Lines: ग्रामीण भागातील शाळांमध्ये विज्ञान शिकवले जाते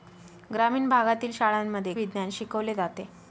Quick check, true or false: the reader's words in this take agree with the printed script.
true